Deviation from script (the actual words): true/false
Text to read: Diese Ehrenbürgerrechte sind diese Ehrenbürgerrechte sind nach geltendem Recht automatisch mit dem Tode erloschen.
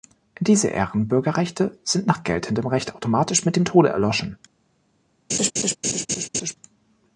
true